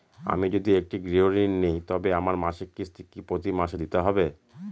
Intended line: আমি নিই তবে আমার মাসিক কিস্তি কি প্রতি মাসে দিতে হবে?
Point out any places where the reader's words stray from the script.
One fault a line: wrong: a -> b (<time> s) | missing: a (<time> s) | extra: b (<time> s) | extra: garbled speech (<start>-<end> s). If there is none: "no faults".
extra: যদি একটি গৃহঋণ (0.5 s)